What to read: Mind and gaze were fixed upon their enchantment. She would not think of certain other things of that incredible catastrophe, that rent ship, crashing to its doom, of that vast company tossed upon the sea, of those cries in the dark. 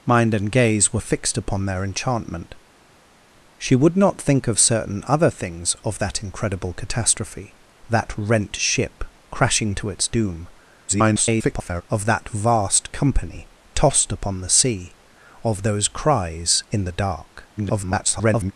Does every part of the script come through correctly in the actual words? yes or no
no